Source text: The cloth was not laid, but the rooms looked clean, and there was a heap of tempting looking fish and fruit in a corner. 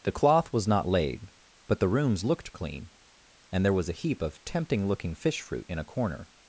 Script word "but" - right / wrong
right